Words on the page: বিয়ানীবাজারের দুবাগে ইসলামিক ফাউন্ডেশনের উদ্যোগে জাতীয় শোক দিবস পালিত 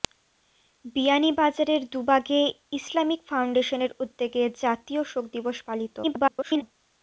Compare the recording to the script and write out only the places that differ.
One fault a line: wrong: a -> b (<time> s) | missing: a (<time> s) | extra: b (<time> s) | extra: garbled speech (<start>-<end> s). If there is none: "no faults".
extra: garbled speech (6.0-6.6 s)